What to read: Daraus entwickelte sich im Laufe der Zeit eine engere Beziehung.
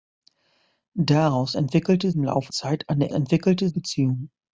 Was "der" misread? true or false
true